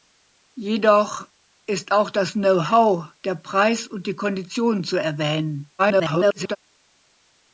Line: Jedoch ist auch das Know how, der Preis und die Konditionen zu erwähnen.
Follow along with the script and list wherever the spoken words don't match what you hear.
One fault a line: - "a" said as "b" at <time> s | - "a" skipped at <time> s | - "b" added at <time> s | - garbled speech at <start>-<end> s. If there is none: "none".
- garbled speech at 5.8-6.6 s